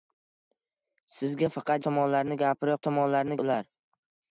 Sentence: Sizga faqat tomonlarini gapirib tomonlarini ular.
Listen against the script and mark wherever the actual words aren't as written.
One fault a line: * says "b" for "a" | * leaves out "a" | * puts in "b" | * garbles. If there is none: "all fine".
all fine